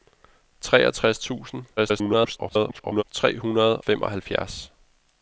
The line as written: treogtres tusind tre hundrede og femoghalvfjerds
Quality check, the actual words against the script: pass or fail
fail